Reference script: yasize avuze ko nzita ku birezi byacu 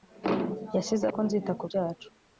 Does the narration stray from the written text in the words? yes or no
yes